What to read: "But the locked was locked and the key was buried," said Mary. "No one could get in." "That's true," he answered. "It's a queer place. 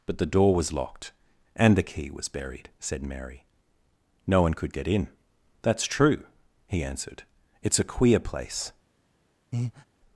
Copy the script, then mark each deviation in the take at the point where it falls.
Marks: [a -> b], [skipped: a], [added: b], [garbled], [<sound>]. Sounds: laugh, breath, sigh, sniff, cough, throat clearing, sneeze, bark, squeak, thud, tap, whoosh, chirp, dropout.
"But the [locked -> door] was locked and the key was buried," said Mary. "No one could get in." "That's true," he answered. "It's a queer place. [breath]